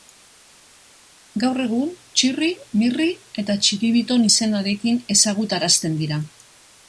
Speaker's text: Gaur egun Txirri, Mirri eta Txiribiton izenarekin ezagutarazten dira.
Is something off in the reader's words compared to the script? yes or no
no